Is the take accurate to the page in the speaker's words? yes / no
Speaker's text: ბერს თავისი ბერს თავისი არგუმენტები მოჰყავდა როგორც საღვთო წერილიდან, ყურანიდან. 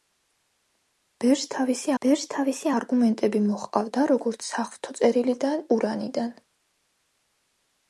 yes